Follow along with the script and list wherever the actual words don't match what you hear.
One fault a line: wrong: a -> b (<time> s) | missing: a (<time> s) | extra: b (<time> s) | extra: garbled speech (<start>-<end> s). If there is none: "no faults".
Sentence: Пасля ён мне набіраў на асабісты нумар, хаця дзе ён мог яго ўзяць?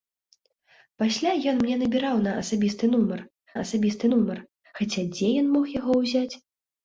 extra: асабісты нумар (3.6 s)